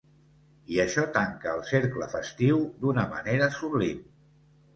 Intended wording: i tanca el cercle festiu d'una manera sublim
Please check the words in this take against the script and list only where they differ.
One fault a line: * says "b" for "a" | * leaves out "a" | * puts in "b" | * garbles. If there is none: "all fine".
* puts in "això"